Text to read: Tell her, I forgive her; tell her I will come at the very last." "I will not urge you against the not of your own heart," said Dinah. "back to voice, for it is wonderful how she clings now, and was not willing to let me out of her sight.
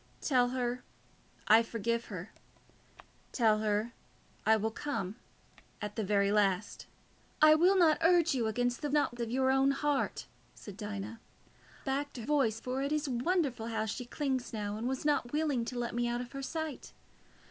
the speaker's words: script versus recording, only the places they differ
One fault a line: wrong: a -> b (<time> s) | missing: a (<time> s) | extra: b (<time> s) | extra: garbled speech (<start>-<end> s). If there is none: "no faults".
no faults